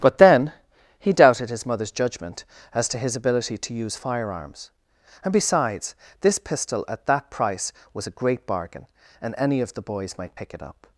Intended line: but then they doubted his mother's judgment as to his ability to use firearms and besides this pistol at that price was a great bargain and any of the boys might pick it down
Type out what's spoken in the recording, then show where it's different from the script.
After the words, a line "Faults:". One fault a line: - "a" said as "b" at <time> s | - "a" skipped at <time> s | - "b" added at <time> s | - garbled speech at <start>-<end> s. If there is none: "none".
but then he doubted his mother's judgment as to his ability to use firearms and besides this pistol at that price was a great bargain and any of the boys might pick it up
Faults:
- "they" said as "he" at 1.0 s
- "down" said as "up" at 10.6 s